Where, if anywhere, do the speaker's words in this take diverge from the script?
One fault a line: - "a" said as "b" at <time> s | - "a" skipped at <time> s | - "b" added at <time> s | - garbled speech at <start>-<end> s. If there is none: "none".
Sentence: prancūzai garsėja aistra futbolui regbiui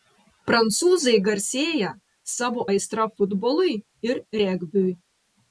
- "savo" added at 2.4 s
- "ir" added at 4.1 s